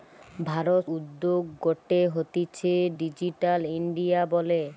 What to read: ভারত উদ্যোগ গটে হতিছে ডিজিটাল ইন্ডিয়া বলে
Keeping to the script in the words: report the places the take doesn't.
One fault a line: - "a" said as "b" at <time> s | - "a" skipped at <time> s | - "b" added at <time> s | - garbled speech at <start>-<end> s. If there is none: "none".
none